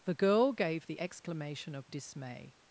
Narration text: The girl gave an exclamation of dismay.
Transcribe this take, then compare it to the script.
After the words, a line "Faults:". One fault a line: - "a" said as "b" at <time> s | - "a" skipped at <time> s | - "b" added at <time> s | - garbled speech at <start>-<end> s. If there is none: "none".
The girl gave the exclamation of dismay.
Faults:
- "an" said as "the" at 0.9 s